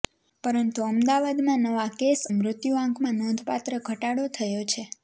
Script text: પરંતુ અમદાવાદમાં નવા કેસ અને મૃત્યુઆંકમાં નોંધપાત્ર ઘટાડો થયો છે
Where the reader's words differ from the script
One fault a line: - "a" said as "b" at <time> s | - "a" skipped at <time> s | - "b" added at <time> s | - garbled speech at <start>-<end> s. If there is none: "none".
- "અને" skipped at 2.2 s